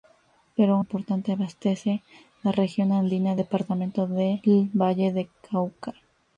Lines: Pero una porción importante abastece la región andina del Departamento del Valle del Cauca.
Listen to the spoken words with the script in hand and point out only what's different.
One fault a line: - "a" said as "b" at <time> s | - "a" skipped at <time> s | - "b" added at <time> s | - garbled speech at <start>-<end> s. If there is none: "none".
- "una porción" skipped at 0.8 s
- "del" skipped at 3.4 s